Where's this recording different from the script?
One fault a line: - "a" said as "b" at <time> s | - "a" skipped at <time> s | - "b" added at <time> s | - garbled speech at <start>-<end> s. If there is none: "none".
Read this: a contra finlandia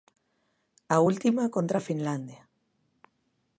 - "última" added at 1.1 s